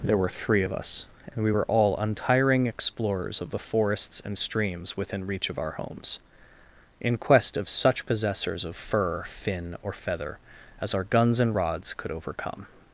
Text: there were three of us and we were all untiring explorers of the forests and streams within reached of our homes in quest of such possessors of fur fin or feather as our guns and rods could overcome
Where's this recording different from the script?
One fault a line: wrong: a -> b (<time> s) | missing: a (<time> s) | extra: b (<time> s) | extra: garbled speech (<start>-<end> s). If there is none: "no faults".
wrong: reached -> reach (5.2 s)